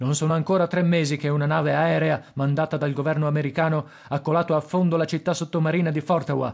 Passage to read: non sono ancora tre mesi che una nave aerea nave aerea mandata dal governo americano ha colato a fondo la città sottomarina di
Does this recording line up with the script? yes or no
no